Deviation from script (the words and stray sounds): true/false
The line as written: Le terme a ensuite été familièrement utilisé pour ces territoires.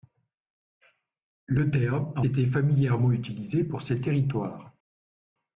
true